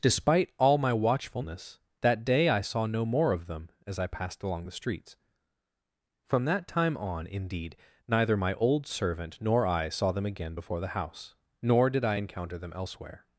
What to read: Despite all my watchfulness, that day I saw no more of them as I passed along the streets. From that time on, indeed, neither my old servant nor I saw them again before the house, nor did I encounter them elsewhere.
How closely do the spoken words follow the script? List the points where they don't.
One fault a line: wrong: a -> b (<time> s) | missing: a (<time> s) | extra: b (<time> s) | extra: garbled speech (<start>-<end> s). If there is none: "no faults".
no faults